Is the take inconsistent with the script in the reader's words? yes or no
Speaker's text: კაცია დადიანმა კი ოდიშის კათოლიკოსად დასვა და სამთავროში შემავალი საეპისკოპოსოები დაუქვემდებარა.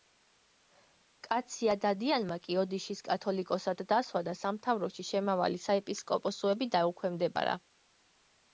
no